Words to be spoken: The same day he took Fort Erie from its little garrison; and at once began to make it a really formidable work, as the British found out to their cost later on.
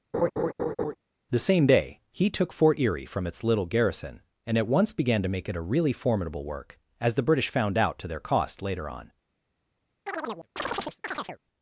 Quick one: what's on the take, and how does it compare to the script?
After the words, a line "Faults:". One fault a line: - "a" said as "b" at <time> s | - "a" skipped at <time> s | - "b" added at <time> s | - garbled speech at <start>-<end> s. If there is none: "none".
The same day he took Fort Erie from its little garrison; and at once began to make it a really formidable work, as the British found out to their cost later on.
Faults:
none